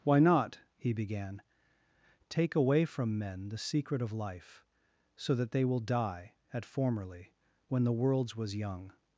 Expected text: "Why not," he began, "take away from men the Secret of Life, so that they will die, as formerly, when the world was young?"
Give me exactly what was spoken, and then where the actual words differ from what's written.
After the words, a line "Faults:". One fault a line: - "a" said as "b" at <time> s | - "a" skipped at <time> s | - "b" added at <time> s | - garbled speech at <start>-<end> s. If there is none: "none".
"Why not," he began, "take away from men the Secret of Life, so that they will die, at formerly, when the worlds was young?"
Faults:
- "as" said as "at" at 6.5 s
- "world" said as "worlds" at 7.9 s